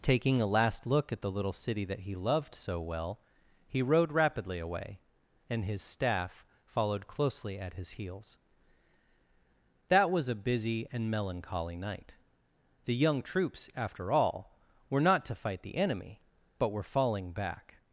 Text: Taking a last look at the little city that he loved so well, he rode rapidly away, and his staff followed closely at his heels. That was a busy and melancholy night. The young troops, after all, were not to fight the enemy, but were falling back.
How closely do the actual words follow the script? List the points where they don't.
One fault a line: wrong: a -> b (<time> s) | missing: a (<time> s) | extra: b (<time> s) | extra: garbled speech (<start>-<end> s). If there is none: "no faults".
no faults